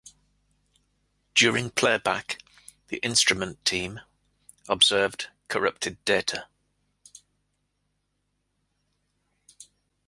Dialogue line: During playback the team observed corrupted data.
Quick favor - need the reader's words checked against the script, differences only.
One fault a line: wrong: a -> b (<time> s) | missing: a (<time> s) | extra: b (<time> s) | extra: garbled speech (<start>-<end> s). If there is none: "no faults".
extra: instrument (3.0 s)